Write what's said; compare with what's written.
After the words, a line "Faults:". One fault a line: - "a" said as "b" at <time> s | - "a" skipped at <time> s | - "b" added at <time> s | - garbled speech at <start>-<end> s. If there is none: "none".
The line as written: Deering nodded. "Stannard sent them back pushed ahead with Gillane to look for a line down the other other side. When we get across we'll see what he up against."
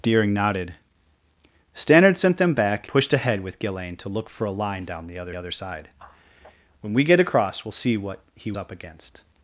Deering nodded. "Stannard sent them back pushed ahead with Gillane to look for a line down the other other side. When we get across we'll see what he up against."
Faults:
none